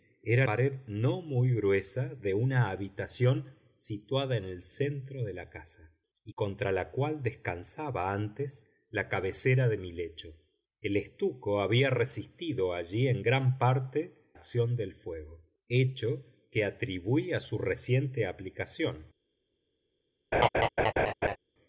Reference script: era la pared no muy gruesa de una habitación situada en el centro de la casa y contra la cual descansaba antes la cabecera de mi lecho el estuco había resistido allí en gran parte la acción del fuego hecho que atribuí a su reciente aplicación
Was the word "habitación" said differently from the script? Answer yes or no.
no